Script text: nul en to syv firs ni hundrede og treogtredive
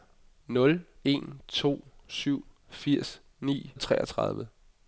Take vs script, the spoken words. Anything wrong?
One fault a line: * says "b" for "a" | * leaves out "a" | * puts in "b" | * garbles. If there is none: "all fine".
* leaves out "hundrede"